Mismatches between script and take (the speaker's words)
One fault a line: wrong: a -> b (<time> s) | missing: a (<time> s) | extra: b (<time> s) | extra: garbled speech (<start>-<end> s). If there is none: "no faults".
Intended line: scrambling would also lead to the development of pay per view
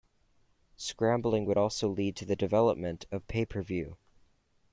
no faults